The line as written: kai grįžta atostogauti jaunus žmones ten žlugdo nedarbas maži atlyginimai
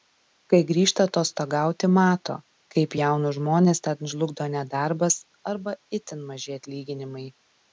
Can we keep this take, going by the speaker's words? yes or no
no